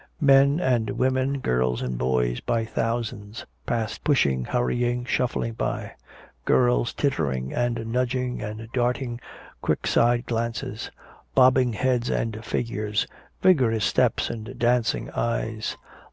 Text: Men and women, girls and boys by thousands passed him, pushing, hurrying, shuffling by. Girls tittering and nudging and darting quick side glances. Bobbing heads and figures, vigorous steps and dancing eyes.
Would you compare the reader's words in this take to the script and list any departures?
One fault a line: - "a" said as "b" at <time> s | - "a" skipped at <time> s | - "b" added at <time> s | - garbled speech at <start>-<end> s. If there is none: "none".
- "him" skipped at 4.0 s